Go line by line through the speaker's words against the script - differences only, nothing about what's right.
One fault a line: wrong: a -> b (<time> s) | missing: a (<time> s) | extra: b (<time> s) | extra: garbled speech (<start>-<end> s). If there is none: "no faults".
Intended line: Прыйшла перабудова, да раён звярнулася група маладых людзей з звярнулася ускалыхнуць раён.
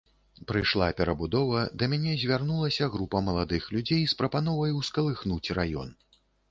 wrong: раён -> мяне (1.9 s)
wrong: звярнулася -> прапановай (4.2 s)